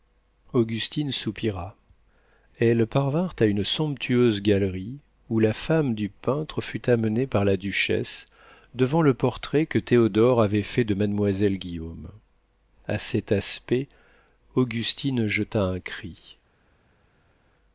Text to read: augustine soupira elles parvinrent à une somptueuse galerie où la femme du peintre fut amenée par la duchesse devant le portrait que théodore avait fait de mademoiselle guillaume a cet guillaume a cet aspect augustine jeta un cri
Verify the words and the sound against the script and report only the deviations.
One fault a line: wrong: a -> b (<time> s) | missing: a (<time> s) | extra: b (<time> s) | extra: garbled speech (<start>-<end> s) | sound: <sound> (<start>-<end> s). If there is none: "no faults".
missing: guillaume a cet (13.3 s)